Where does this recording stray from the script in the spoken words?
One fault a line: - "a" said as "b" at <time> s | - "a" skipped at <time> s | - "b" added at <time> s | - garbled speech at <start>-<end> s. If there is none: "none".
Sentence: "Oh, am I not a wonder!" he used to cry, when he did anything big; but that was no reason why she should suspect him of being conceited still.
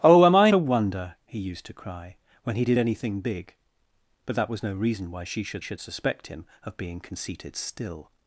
- "not" skipped at 0.5 s
- "should" added at 5.6 s